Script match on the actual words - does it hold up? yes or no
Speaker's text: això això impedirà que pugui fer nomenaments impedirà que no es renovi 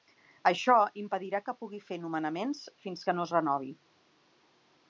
no